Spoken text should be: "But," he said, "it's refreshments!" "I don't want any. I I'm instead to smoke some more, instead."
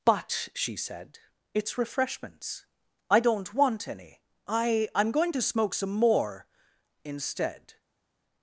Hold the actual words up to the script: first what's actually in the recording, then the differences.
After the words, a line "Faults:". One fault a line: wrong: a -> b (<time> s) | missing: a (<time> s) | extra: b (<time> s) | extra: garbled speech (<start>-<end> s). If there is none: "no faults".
"But," she said, "it's refreshments!" "I don't want any. I I'm going to smoke some more, instead."
Faults:
wrong: he -> she (0.5 s)
wrong: instead -> going (5.1 s)